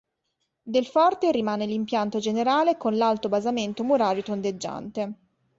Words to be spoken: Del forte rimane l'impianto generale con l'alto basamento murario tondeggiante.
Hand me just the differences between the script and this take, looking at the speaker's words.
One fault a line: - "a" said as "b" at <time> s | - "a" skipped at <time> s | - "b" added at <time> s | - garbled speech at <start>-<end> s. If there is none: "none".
none